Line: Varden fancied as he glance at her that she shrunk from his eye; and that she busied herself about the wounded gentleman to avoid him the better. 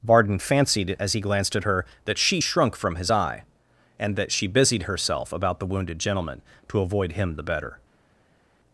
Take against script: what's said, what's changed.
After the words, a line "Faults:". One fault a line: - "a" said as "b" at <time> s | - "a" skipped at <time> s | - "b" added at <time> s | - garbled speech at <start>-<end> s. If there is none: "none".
Varden fancied as he glanced at her that she shrunk from his eye; and that she busied herself about the wounded gentleman to avoid him the better.
Faults:
- "glance" said as "glanced" at 1.2 s